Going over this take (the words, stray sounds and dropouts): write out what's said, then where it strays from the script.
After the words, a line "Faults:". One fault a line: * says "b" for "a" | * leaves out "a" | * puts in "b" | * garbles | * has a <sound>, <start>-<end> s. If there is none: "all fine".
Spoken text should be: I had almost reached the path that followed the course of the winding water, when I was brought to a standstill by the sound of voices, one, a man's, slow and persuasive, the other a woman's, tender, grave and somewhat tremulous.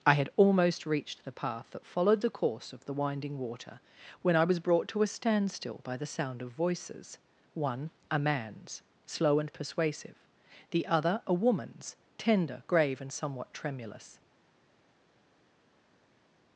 I had almost reached the path that followed the course of the winding water, when I was brought to a standstill by the sound of voices, one, a man's, slow and persuasive, the other a woman's, tender, grave and somewhat tremulous.
Faults:
all fine